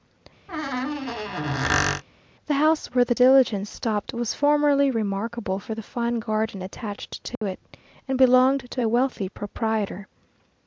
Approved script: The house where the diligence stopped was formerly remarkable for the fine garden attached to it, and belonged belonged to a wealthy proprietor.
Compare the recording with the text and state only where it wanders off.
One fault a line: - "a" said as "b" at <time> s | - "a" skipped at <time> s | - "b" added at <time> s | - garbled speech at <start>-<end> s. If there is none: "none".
- "belonged" skipped at 8.7 s